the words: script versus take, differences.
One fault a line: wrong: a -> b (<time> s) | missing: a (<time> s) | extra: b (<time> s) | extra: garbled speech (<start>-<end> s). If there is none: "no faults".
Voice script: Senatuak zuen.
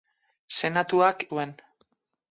no faults